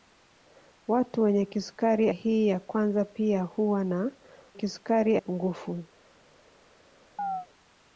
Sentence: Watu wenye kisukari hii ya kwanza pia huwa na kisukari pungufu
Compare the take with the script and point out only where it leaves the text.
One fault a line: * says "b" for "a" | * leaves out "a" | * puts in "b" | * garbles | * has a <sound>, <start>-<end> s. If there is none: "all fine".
* has a chirp, 7.2-7.5 s